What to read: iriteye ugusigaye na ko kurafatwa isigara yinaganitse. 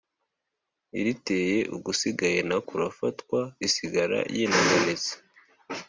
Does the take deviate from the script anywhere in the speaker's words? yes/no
yes